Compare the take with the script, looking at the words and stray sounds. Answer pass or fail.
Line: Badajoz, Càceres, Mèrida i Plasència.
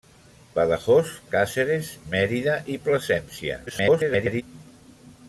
fail